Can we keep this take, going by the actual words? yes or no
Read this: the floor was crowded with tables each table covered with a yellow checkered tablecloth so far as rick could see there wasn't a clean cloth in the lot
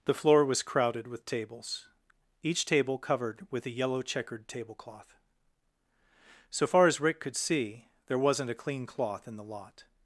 yes